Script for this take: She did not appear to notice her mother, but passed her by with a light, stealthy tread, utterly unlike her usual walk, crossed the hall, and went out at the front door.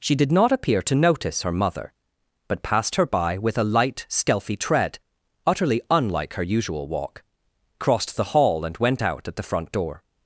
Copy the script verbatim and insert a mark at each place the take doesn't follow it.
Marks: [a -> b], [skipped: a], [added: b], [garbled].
She did not appear to notice her mother, but passed her by with a light, stealthy tread, utterly unlike her usual walk, crossed the hall, and went out at the front door.